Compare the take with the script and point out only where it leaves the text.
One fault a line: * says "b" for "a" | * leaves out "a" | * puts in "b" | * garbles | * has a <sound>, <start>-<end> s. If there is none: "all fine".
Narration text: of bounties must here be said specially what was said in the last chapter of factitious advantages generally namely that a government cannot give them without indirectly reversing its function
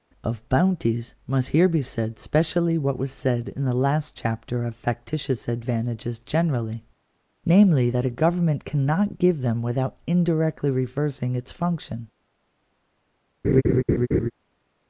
* has a laugh, 13.4-14.3 s